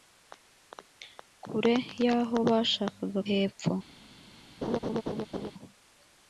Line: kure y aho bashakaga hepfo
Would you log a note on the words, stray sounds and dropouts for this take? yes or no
yes